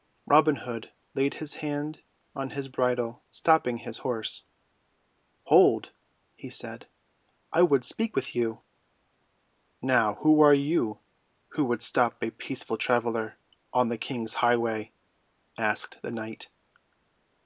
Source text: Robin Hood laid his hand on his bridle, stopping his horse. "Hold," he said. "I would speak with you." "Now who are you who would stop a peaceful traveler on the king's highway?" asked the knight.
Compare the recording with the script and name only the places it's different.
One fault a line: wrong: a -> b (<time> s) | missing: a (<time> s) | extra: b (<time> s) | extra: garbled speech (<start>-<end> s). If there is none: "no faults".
no faults